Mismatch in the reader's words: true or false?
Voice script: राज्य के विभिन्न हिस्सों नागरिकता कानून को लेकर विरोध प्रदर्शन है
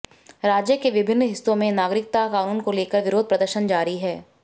true